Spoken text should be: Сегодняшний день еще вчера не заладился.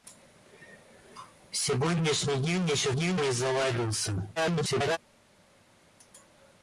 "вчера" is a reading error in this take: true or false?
true